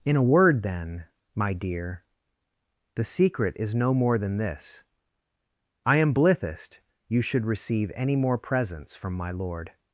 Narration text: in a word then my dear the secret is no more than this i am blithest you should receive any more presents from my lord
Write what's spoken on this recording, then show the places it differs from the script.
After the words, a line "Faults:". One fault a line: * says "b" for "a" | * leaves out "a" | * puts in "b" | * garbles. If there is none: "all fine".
in a word then my dear the secret is no more than this i am blithest you should receive any more presents from my lord
Faults:
all fine